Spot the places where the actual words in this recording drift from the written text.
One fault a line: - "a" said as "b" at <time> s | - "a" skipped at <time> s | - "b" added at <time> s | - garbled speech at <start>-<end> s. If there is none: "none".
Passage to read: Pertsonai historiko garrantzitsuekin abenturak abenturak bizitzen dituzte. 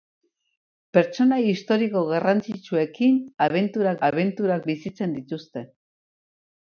none